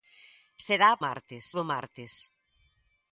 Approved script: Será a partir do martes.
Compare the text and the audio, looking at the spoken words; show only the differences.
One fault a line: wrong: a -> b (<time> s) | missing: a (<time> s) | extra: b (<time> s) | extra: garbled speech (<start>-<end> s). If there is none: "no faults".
wrong: partir -> martes (1.0 s)